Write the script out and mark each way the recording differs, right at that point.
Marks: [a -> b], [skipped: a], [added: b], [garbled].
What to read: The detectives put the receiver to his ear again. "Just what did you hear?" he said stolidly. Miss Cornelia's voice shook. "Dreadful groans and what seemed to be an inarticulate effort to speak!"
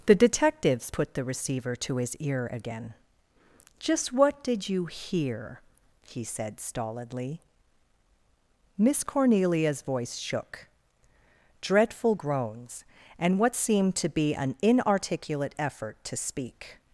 The detectives put the receiver to his ear again. "Just what did you hear?" he said stolidly. Miss Cornelia's voice shook. "Dreadful groans and what seemed to be an inarticulate effort to speak!"